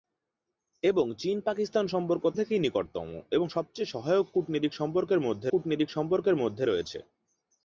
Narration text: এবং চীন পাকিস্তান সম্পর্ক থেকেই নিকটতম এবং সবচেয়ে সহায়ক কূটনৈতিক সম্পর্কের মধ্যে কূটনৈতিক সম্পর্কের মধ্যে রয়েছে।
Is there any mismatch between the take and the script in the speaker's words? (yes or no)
no